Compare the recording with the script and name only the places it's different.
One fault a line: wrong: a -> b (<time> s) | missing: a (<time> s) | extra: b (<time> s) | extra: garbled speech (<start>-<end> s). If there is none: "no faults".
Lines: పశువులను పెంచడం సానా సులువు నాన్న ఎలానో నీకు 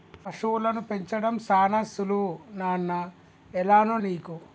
no faults